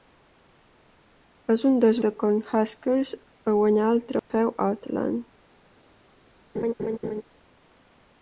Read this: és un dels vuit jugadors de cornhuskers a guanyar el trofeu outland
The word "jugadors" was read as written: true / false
false